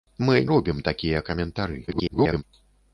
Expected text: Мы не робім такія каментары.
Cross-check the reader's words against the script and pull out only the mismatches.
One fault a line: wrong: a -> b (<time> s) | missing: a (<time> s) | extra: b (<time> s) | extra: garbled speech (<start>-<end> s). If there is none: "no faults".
missing: не (0.4 s)
extra: garbled speech (1.9-2.4 s)